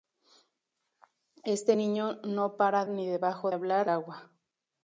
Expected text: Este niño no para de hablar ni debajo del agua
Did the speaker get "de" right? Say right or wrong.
wrong